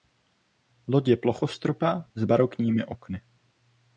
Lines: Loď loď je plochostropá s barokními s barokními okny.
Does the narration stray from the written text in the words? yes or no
yes